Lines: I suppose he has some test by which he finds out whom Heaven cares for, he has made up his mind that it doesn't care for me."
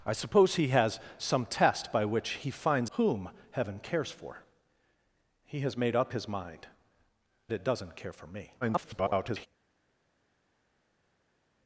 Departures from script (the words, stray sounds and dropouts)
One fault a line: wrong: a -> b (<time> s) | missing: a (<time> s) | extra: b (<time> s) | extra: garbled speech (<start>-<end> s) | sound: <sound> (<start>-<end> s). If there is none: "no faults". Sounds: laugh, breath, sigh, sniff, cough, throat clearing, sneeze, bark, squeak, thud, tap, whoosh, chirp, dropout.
missing: out (2.9 s)
missing: that (6.7 s)
extra: garbled speech (8.6-9.5 s)